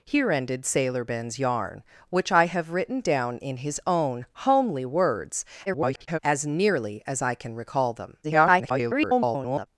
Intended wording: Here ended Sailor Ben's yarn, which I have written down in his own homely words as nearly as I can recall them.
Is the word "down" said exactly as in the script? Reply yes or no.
yes